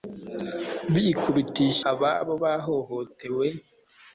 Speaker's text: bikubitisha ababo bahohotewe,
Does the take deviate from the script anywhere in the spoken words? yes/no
no